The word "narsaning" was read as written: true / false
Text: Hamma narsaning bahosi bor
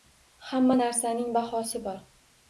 true